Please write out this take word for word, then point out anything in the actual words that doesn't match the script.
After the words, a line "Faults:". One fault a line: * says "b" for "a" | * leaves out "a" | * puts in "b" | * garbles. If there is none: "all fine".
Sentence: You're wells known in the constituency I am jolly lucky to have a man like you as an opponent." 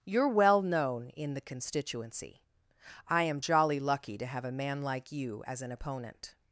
You're well known in the constituency I am jolly lucky to have a man like you as an opponent."
Faults:
* says "well" for "wells"